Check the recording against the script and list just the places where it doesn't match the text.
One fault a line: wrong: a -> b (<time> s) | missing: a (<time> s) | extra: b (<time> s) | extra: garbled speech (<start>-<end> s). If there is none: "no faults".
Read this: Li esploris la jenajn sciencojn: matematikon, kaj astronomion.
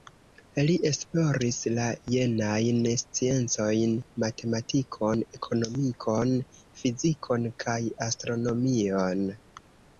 extra: ekonomikon fizikon (5.4 s)